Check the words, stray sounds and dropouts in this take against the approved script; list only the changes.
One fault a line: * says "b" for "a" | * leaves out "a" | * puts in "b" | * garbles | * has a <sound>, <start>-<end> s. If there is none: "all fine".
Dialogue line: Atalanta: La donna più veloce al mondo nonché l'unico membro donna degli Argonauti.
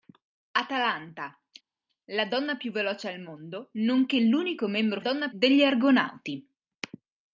all fine